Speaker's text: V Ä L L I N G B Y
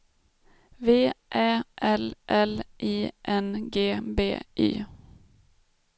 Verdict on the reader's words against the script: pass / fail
pass